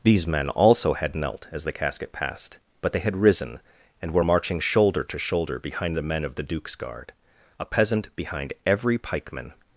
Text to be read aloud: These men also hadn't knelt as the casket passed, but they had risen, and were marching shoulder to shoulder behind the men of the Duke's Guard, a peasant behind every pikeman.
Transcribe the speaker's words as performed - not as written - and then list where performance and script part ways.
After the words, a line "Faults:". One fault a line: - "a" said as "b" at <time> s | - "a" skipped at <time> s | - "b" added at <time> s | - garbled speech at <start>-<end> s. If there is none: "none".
These men also had knelt as the casket passed, but they had risen, and were marching shoulder to shoulder behind the men of the Duke's Guard, a peasant behind every pikeman.
Faults:
- "hadn't" said as "had" at 0.9 s